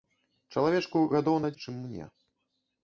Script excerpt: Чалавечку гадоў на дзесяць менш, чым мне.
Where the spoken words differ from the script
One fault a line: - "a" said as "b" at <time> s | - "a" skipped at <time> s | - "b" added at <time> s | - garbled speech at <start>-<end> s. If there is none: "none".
- "дзесяць менш" skipped at 1.5 s